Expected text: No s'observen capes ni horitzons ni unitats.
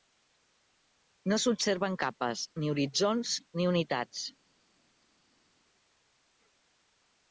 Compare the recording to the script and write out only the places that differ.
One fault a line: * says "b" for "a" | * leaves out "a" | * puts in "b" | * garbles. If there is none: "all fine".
all fine